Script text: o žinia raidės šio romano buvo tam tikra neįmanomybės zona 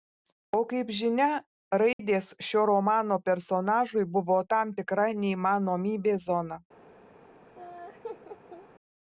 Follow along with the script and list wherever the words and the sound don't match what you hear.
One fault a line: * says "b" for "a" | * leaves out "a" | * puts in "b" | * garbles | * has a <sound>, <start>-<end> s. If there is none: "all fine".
* puts in "kaip"
* has a dropout, 1.9-2.0 s
* puts in "personažui"
* has a laugh, 7.5-8.7 s